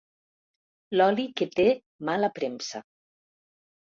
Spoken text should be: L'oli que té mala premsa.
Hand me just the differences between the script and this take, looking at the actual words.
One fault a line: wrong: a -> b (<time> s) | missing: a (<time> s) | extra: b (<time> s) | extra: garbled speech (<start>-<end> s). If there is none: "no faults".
no faults